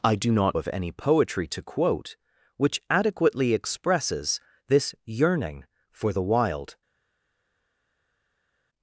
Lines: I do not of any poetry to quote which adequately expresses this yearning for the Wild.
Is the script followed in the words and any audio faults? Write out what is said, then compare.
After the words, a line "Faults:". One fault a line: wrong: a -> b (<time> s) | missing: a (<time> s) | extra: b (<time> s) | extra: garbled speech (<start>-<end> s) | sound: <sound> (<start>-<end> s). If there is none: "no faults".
I do not of any poetry to quote which adequately expresses this yearning for the Wild.
Faults:
no faults